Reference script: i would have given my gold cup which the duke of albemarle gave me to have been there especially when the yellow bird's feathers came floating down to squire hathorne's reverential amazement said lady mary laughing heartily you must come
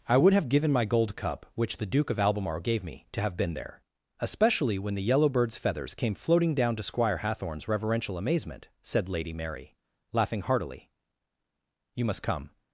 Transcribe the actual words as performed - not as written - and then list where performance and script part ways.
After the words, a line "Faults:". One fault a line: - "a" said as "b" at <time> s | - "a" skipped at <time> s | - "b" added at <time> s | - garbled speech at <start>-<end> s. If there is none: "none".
i would have given my gold cup which the duke of albemarle gave me to have been there especially when the yellow bird's feathers came floating down to squire hathorne's reverential amazement said lady mary laughing heartily you must come
Faults:
none